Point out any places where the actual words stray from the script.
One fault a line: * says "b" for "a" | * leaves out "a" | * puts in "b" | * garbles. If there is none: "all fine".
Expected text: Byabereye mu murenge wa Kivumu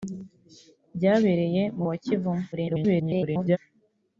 * leaves out "murenge"
* garbles